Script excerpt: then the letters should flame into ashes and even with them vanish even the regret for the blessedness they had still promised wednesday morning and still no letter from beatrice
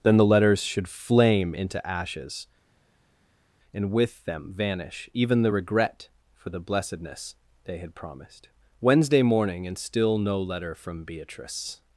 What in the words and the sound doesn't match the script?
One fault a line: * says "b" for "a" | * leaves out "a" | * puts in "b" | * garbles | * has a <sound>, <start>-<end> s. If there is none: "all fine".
* leaves out "even"
* leaves out "still"